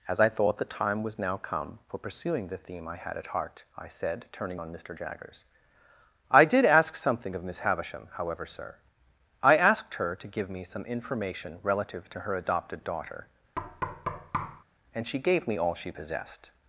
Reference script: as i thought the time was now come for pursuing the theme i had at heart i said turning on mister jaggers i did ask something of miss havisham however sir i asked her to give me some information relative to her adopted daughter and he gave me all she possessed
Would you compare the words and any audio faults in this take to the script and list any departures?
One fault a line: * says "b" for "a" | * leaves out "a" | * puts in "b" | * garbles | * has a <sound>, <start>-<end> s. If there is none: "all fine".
* has a thud, 13.6-14.6 s
* says "she" for "he"